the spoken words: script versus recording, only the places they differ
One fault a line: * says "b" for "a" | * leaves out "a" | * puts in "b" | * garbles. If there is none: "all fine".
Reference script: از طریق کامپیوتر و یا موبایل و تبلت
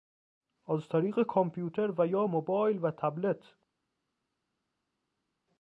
all fine